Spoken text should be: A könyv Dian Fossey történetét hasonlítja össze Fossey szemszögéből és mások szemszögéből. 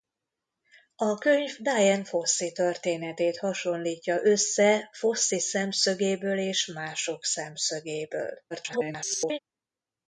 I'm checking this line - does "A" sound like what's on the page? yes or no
yes